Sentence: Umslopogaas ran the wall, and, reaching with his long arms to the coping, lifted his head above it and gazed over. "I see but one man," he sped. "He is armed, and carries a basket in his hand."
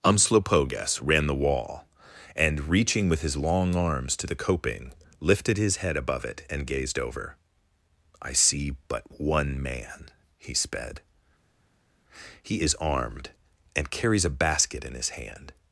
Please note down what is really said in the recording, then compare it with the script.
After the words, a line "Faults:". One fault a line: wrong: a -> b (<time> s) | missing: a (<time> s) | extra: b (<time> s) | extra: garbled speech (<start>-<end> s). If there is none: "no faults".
Umslopogaas ran the wall, and, reaching with his long arms to the coping, lifted his head above it and gazed over. "I see but one man," he sped. "He is armed, and carries a basket in his hand."
Faults:
no faults